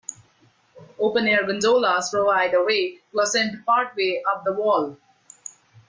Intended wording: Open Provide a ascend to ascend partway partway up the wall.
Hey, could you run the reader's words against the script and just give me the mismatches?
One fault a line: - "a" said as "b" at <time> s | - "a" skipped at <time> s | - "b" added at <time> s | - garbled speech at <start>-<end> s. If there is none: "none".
- "Air Gondolas" added at 1.3 s
- "ascend" said as "way" at 2.6 s
- "partway" skipped at 4.2 s